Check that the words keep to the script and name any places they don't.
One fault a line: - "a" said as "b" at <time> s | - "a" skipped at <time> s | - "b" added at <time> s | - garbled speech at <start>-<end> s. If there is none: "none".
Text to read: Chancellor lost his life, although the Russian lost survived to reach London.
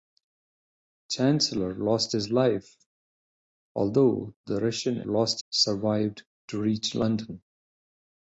none